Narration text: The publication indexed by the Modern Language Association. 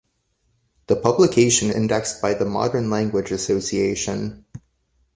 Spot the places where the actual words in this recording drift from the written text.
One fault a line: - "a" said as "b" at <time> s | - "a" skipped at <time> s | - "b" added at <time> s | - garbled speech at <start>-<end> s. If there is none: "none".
none